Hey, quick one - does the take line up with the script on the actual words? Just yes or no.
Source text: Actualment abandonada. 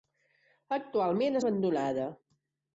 yes